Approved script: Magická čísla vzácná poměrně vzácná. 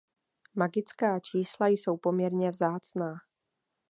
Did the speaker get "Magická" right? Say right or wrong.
right